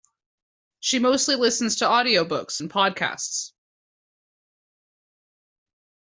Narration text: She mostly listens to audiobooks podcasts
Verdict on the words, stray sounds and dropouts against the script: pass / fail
fail